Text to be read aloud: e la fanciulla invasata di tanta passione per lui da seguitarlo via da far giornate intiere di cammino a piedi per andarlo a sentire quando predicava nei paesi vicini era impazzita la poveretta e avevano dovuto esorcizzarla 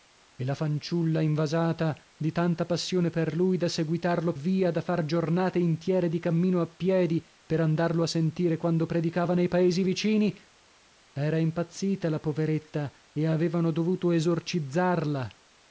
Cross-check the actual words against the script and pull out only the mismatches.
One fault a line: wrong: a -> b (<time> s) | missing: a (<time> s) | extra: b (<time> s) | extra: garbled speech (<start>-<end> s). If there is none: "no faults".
no faults